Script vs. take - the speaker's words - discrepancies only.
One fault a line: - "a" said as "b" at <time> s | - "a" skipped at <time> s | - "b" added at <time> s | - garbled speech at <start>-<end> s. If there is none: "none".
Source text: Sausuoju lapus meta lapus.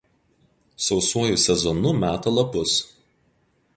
- "lapus" said as "sezonu" at 1.4 s